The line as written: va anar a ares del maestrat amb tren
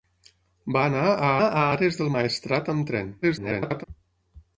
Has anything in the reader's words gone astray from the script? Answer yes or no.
yes